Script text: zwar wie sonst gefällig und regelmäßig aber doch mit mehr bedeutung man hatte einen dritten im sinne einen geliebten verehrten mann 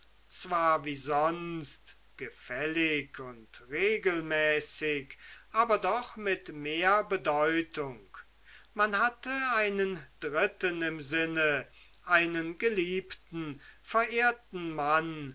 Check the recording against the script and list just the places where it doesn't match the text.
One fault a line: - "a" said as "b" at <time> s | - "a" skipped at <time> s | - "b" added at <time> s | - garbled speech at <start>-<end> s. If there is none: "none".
none